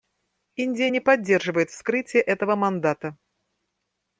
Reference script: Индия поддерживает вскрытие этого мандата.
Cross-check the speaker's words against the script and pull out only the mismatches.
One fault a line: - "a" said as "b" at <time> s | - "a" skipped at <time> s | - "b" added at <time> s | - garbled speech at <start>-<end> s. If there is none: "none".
- "не" added at 0.9 s